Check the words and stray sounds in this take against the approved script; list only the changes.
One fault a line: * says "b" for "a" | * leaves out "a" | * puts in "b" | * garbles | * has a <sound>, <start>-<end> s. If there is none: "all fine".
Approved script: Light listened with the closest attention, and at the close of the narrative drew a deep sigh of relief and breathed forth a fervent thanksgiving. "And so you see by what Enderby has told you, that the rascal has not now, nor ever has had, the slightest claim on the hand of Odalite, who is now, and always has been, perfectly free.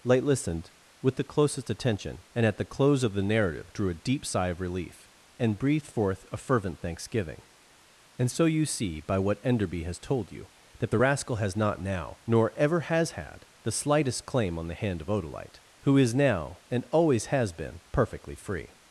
all fine